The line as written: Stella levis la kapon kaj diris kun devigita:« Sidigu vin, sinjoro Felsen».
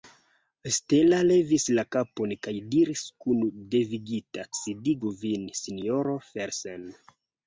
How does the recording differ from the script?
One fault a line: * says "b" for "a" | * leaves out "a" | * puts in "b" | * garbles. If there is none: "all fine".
all fine